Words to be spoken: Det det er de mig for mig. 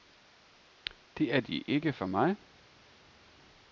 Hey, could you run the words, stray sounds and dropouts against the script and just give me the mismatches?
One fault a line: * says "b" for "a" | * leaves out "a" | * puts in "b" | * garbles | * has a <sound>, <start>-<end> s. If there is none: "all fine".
* leaves out "det"
* says "ikke" for "mig"